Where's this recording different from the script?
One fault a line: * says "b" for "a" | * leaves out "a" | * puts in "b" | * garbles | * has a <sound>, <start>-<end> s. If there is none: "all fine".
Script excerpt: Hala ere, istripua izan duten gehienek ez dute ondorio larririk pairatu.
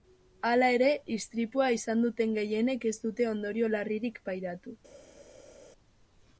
all fine